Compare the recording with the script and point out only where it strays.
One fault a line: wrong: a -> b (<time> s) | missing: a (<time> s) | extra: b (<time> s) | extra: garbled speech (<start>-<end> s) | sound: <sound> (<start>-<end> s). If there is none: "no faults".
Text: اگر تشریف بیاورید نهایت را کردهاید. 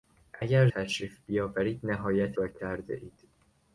no faults